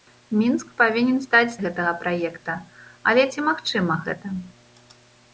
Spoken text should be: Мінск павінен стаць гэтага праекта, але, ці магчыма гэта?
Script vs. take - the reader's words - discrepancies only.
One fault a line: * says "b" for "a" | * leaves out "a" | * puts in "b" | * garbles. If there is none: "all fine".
all fine